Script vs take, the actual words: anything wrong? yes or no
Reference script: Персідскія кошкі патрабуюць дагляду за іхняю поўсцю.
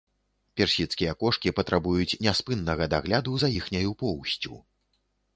yes